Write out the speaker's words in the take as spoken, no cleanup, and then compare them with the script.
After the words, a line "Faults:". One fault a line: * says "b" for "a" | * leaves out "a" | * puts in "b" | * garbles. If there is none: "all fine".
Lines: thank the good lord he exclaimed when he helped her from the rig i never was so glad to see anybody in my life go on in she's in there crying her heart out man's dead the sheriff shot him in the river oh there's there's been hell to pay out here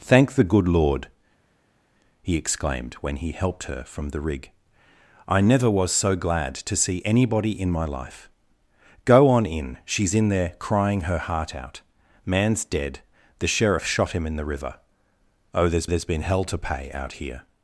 thank the good lord he exclaimed when he helped her from the rig i never was so glad to see anybody in my life go on in she's in there crying her heart out man's dead the sheriff shot him in the river oh there's there's been hell to pay out here
Faults:
all fine